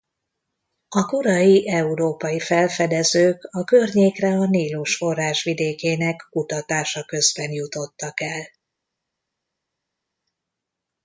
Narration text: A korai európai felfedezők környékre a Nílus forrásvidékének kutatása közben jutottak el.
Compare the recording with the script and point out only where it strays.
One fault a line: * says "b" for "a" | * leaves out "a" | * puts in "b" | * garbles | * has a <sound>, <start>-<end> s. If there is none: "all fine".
* puts in "a"